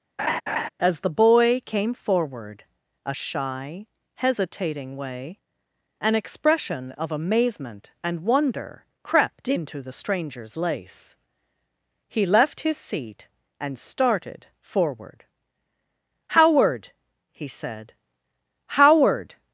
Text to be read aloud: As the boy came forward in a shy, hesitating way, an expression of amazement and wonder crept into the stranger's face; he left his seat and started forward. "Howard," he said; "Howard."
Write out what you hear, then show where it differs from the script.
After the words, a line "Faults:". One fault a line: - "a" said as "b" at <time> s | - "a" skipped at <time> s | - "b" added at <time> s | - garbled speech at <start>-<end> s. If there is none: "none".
As the boy came forward a shy, hesitating way, an expression of amazement and wonder crept into the stranger's lace; he left his seat and started forward. "Howard," he said; "Howard."
Faults:
- "in" skipped at 2.6 s
- "face" said as "lace" at 10.6 s